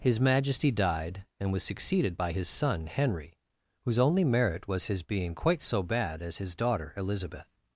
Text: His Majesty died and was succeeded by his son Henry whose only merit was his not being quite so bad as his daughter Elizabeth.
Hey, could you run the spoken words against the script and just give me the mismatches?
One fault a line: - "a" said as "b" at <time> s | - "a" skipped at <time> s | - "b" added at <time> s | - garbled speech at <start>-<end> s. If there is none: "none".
- "not" skipped at 5.0 s